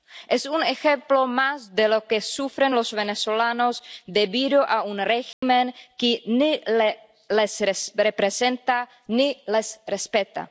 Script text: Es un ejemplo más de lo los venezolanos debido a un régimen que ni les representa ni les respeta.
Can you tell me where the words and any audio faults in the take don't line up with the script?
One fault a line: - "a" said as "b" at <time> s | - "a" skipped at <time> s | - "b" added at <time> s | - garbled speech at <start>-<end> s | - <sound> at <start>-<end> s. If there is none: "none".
- "que sufren" added at 2.1 s
- dropout at 5.3-5.4 s